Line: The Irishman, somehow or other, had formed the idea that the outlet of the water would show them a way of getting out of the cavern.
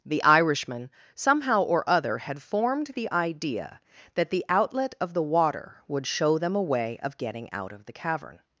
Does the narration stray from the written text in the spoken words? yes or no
no